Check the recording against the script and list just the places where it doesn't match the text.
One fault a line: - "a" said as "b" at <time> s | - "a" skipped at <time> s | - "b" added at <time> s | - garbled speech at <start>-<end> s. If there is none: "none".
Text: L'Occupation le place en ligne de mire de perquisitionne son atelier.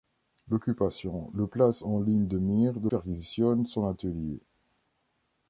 none